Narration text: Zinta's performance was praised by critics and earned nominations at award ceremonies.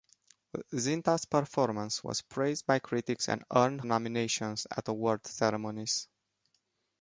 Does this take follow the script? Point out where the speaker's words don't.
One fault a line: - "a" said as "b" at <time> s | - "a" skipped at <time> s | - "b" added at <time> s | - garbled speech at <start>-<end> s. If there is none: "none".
none